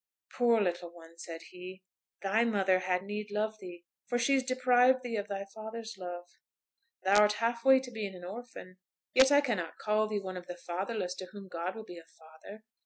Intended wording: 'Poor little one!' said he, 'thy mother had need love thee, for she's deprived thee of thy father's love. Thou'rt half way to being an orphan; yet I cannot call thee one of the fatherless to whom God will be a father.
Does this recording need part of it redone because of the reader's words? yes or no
no